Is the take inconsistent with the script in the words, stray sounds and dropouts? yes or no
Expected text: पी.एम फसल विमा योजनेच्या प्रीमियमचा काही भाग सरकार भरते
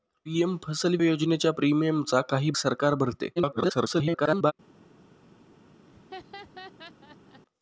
yes